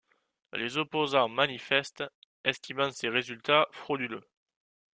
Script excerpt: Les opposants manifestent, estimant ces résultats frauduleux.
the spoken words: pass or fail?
pass